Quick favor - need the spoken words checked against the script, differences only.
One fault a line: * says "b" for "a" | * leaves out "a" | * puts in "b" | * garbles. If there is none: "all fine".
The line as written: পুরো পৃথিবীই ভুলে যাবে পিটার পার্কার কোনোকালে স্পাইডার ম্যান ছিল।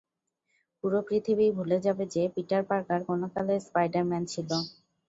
* puts in "যে"